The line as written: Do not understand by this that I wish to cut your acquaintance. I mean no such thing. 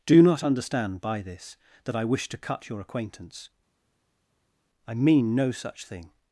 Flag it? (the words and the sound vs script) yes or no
no